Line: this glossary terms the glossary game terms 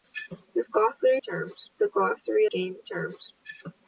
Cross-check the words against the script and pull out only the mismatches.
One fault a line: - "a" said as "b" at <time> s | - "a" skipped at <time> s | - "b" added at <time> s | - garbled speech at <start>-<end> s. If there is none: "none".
none